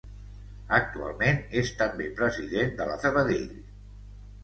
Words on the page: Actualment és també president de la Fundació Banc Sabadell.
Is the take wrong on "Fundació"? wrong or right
wrong